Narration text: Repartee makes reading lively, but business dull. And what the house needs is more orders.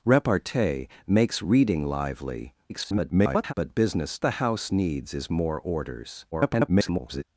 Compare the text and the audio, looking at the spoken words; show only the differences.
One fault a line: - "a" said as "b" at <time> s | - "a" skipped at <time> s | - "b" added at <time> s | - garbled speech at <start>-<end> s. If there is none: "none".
- garbled speech at 2.7-3.5 s
- "dull And what" skipped at 4.2 s
- garbled speech at 6.3-7.2 s